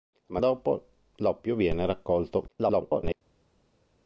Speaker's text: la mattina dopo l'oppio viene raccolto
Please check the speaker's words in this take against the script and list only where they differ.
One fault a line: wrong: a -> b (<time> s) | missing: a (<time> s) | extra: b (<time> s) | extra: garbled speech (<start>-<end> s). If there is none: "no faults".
missing: mattina (0.4 s)
extra: garbled speech (2.5-3.2 s)